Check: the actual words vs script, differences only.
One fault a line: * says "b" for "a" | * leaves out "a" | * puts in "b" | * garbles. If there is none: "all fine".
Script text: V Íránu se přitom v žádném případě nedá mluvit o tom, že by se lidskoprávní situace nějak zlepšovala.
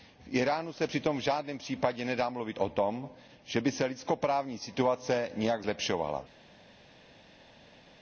all fine